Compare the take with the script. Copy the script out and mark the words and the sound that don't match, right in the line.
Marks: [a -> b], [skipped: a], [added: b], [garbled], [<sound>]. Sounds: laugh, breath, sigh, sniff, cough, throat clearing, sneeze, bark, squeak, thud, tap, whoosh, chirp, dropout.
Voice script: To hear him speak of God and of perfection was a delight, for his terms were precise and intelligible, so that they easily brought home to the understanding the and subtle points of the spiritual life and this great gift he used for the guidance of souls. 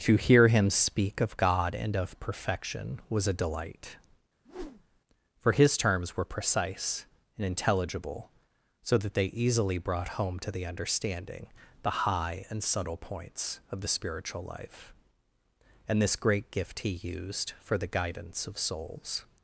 To hear him speak of God and of perfection was a delight, [whoosh] for his terms were precise and intelligible, so that they easily brought home to the understanding the [added: high] and subtle points of the spiritual life and this great gift he used for the guidance of souls.